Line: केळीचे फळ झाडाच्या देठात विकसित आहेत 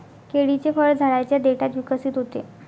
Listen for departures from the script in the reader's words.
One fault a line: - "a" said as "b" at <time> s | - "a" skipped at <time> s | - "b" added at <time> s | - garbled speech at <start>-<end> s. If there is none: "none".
- "आहेत" said as "होते" at 2.2 s